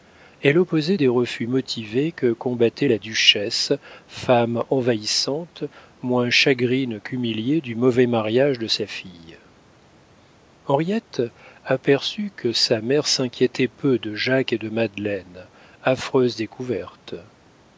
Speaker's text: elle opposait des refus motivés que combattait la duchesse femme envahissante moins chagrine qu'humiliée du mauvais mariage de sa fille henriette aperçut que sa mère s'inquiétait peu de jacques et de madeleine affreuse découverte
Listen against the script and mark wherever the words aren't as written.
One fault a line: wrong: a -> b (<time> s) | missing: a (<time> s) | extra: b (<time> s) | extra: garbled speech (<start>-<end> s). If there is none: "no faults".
no faults